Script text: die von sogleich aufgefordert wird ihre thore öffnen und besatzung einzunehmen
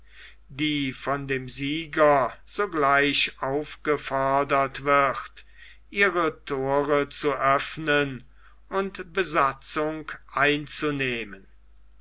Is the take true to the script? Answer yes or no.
no